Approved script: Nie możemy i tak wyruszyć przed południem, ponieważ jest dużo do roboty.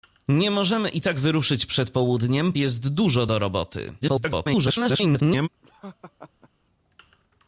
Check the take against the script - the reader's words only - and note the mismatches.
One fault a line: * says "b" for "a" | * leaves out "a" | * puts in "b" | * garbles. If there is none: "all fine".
* leaves out "ponieważ"
* garbles